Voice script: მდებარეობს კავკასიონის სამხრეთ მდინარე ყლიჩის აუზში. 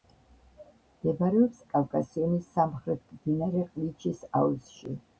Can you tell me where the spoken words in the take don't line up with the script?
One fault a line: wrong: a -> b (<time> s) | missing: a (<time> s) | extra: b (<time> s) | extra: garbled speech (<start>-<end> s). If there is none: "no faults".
no faults